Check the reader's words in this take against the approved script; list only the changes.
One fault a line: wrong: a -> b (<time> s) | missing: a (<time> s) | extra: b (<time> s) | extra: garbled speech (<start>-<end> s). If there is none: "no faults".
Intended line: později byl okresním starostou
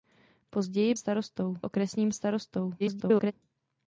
wrong: byl -> starostou (0.9 s)
extra: garbled speech (2.8-3.3 s)